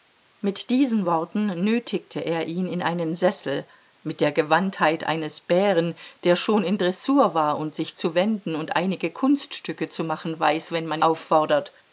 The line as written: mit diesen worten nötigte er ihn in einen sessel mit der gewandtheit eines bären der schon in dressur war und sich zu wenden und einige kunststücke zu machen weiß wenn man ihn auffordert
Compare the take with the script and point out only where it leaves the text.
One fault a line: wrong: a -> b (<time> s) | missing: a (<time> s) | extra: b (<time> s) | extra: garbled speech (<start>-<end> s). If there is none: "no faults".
missing: ihn (11.0 s)